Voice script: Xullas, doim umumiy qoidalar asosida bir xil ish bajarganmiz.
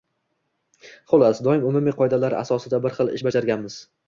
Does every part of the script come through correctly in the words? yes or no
yes